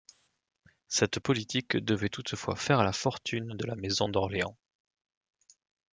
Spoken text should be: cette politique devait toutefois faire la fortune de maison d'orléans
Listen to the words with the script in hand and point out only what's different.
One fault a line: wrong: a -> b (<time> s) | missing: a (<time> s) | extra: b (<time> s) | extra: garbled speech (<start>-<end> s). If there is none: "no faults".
extra: la (3.7 s)